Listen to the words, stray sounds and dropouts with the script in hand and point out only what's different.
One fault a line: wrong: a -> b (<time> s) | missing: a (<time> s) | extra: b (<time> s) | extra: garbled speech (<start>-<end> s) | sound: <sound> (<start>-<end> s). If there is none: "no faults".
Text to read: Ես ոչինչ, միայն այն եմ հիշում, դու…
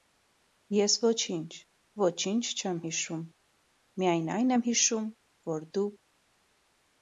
extra: ոչինչ չեմ հիշում (2.0 s)
extra: որ (5.5 s)